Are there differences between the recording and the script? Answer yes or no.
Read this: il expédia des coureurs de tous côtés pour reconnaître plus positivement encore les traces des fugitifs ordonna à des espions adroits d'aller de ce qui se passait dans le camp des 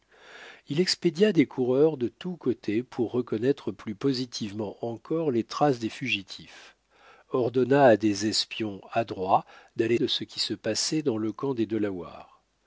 no